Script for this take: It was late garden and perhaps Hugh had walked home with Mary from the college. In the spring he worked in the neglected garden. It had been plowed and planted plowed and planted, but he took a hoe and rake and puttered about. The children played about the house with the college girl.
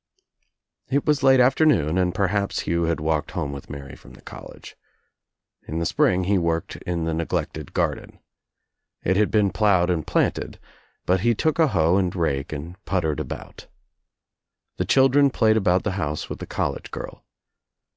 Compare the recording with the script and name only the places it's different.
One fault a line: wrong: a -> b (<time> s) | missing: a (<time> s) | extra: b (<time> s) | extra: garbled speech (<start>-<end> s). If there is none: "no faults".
wrong: garden -> afternoon (1.4 s)
missing: plowed and planted (10.6 s)